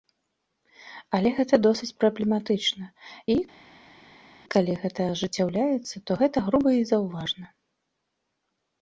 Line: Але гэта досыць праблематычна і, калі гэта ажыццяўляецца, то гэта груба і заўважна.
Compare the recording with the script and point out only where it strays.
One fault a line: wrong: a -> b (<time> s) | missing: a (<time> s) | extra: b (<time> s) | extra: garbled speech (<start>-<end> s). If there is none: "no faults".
no faults